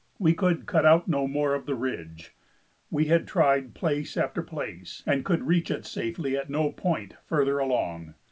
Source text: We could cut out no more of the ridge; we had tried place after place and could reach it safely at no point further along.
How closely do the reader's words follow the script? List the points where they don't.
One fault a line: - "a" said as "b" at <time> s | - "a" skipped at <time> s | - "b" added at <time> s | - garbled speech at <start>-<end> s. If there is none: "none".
none